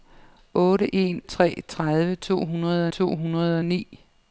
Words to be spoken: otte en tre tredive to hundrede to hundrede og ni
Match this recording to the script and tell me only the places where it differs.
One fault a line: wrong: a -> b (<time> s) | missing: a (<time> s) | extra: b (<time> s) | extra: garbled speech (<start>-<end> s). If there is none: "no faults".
no faults